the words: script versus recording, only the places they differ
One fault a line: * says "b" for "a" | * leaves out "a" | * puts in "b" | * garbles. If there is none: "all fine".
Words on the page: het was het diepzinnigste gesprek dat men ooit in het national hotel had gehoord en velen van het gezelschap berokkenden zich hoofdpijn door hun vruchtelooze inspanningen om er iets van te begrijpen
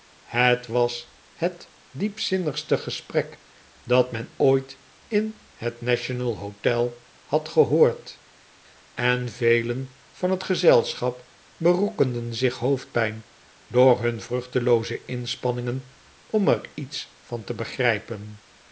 all fine